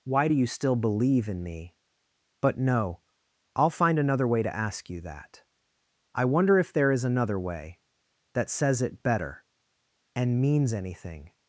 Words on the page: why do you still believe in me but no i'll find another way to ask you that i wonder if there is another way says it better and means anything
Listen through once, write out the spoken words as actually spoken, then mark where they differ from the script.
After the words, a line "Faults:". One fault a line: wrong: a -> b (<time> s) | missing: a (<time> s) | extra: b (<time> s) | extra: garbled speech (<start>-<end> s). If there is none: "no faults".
why do you still believe in me but no i'll find another way to ask you that i wonder if there is another way that says it better and means anything
Faults:
extra: that (8.3 s)